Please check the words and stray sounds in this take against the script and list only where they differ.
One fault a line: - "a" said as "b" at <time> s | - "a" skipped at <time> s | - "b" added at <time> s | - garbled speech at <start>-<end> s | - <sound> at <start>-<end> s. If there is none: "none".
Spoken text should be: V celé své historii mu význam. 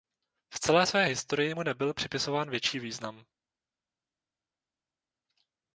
- "nebyl připisován větší" added at 1.6 s